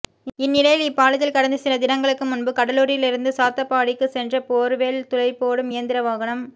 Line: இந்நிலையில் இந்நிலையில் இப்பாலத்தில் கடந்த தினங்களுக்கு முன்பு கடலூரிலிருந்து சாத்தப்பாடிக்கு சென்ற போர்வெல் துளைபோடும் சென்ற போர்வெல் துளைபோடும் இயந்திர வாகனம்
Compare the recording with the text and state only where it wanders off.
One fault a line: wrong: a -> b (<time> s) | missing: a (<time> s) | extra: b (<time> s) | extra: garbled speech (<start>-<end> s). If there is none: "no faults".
missing: இந்நிலையில் (0.8 s)
extra: சில (1.6 s)
missing: சென்ற போர்வெல் துளைபோடும் (5.7 s)